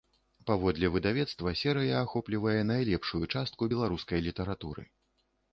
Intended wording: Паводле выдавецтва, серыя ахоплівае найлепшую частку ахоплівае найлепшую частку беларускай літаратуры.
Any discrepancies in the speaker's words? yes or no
yes